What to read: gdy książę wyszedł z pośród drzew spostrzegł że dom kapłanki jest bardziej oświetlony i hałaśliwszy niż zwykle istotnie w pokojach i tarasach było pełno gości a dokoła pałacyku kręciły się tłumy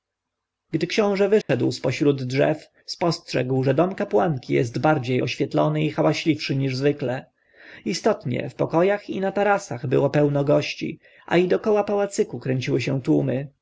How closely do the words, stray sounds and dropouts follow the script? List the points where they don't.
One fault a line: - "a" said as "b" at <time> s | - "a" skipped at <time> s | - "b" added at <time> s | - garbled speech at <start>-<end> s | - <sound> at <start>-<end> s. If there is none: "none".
- dropout at 1.4-1.5 s
- "na" added at 9.2 s
- "i" added at 11.4 s